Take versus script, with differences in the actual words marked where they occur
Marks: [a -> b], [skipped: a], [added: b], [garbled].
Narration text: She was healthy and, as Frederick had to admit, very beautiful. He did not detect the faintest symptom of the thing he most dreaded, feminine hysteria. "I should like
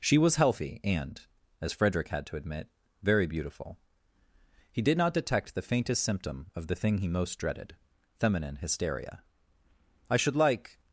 She was healthy and, as Frederick had to admit, very beautiful. He did not detect the faintest symptom of the thing he most dreaded, feminine hysteria. "I should like